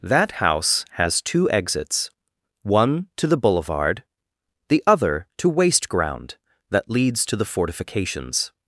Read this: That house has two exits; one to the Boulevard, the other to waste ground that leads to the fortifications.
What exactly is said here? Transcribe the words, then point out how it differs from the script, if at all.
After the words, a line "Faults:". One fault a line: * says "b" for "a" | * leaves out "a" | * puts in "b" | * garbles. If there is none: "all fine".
That house has two exits; one to the Boulevard, the other to waste ground that leads to the fortifications.
Faults:
all fine